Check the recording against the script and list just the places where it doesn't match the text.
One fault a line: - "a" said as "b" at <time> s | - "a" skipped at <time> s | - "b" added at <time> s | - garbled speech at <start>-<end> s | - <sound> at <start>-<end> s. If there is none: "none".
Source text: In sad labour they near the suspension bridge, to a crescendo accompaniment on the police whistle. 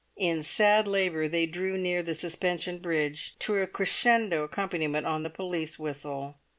- "drew" added at 1.4 s